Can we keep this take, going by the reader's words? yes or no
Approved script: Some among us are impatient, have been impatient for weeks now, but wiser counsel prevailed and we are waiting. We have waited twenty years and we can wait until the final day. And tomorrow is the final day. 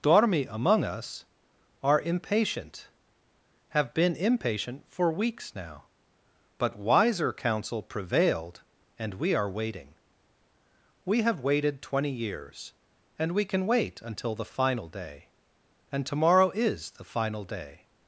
no